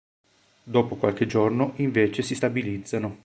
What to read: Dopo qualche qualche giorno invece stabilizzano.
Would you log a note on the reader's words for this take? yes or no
yes